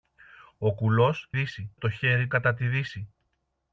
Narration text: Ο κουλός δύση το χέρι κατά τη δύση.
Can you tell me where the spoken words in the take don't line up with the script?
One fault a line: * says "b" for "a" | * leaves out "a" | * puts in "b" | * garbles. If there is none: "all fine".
all fine